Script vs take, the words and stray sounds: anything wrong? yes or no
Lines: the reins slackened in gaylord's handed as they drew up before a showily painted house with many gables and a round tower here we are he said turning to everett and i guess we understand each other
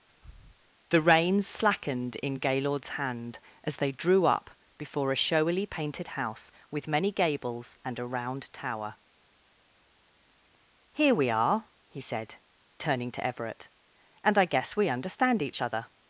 yes